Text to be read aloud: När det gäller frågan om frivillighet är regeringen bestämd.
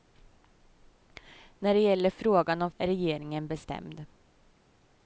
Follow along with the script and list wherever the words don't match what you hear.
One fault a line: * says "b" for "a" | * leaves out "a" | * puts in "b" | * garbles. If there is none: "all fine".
* leaves out "frivillighet"